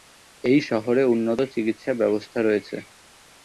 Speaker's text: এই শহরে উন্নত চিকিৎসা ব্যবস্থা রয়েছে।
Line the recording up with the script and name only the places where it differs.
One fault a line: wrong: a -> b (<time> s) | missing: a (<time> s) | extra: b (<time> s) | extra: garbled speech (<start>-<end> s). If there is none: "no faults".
no faults